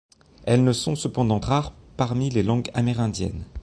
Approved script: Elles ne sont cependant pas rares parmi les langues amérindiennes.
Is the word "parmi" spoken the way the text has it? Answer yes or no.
yes